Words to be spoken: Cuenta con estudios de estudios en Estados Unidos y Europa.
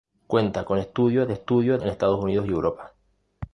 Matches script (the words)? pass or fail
pass